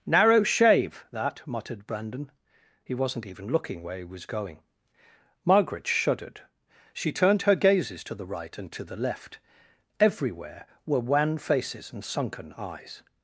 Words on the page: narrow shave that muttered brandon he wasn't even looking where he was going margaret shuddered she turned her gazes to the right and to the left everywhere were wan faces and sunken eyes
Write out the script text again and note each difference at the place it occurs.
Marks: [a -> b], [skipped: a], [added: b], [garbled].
narrow shave that muttered brandon he wasn't even looking where he was going margaret shuddered she turned her gazes to the right and to the left everywhere were wan faces and sunken eyes